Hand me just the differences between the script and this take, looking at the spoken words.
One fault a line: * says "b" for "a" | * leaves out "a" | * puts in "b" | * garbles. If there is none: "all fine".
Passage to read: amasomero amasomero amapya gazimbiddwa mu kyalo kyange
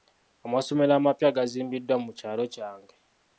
* leaves out "amasomero"